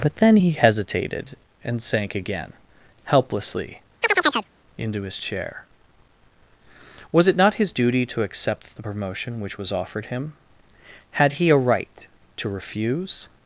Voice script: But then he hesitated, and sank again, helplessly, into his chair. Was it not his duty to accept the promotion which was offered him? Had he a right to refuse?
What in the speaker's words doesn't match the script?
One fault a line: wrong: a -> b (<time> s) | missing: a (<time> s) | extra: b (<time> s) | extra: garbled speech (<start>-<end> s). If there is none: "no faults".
no faults